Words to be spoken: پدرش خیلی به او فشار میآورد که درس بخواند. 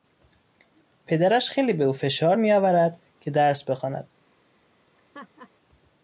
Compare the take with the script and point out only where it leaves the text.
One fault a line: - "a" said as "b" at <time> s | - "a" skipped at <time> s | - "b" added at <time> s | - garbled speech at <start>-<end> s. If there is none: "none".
none